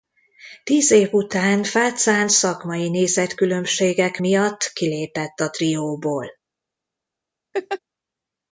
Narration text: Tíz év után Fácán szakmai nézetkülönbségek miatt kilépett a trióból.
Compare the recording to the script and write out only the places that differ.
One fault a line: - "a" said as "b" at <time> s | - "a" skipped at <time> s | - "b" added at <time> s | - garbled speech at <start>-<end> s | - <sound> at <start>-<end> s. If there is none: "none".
- laugh at 7.5-7.8 s